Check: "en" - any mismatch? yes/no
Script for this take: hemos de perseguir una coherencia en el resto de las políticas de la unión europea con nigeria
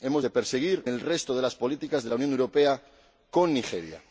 yes